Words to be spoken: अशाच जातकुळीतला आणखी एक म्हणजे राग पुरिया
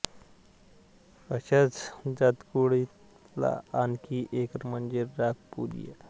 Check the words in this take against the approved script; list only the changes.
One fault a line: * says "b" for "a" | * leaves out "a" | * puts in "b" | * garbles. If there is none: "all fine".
all fine